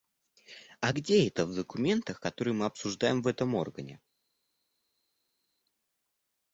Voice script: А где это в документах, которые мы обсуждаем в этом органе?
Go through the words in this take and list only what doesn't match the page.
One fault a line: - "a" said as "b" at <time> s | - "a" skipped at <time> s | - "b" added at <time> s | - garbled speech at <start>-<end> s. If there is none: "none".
none